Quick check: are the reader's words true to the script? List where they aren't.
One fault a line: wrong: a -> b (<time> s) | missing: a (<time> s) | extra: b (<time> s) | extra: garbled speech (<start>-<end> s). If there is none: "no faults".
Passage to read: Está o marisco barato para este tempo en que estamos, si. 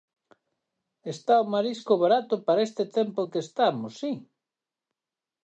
no faults